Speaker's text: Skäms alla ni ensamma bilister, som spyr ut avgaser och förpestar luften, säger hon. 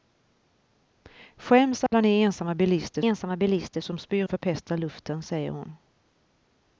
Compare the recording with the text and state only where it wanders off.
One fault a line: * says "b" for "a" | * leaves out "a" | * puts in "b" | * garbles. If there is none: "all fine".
* puts in "ensamma bilister"
* leaves out "ut avgaser och"